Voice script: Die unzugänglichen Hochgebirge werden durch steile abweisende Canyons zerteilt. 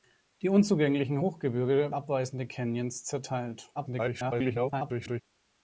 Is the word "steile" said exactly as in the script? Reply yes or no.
no